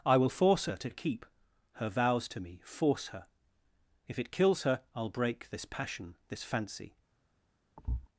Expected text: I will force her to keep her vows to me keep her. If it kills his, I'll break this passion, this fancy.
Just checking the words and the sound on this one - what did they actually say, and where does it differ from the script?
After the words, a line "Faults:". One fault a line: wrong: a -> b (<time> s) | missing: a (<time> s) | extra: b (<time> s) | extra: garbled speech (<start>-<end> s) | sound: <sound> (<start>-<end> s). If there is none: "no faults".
I will force her to keep her vows to me force her. If it kills her, I'll break this passion, this fancy.
Faults:
wrong: keep -> force (2.6 s)
wrong: his -> her (4.6 s)
sound: thud (7.8-8.1 s)